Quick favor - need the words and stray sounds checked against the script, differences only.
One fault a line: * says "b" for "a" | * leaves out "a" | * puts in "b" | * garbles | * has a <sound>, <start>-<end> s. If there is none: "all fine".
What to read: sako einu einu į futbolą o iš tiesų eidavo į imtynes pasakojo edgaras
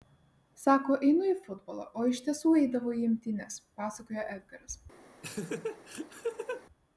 * leaves out "einu"
* has a laugh, 5.2-6.6 s